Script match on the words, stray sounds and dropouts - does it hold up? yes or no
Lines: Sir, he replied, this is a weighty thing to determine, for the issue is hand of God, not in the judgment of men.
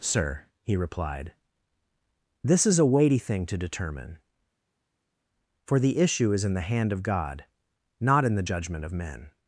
no